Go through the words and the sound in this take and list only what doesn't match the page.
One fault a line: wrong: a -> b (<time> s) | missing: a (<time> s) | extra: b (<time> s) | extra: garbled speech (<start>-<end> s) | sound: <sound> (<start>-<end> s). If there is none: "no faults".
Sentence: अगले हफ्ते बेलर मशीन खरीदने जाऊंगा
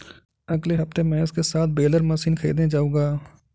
extra: महेश के साथ (1.0 s)